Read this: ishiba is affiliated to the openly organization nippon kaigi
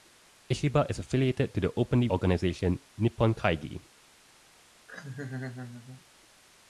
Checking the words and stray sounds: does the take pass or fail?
fail